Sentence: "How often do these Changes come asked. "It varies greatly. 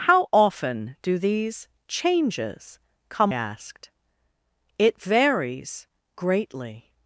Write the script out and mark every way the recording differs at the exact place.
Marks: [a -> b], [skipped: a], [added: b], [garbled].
"How often do these Changes come asked. "It varies greatly.